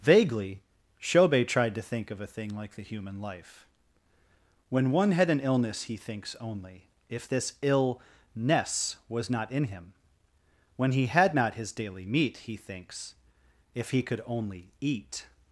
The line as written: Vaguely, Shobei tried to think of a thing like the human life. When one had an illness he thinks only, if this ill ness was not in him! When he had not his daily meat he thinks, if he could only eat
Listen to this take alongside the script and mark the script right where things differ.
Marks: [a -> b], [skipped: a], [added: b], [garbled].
Vaguely, Shobei tried to think of a thing like the human life. When one had an illness he thinks only, if this ill ness was not in him! When he had not his daily meat he thinks, if he could only eat